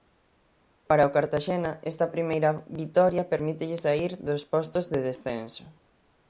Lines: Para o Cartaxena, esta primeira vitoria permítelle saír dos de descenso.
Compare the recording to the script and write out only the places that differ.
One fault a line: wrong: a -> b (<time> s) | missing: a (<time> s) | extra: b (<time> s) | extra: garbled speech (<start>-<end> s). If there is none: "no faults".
extra: postos (4.5 s)